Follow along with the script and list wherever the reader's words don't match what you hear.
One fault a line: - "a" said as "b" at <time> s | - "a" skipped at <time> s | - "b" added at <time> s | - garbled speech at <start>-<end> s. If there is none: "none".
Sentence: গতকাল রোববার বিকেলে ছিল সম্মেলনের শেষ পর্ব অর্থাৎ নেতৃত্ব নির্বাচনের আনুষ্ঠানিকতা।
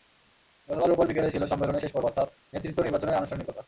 none